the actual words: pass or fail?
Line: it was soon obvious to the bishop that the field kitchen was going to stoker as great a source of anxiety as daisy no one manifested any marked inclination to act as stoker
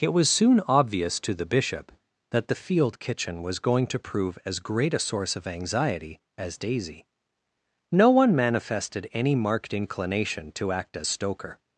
fail